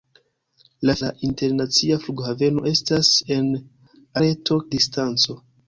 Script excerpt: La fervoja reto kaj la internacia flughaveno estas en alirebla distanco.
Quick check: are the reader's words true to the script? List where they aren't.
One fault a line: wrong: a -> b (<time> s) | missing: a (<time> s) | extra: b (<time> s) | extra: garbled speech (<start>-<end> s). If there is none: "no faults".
missing: fervoja reto kaj (0.9 s)
wrong: alirebla -> reto (4.2 s)